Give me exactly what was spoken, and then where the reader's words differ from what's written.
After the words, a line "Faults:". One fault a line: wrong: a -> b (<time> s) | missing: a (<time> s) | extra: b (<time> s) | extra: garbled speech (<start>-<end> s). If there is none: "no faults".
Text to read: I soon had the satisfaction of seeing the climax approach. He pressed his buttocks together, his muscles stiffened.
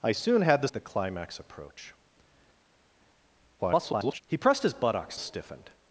I soon had the the climax approach. [garbled] He pressed his buttocks stiffened.
Faults:
missing: satisfaction of seeing (0.7 s)
extra: garbled speech (3.6-4.2 s)
missing: together his muscles (5.2 s)